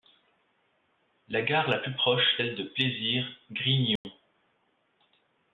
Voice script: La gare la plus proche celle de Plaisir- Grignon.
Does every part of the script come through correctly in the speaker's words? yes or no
yes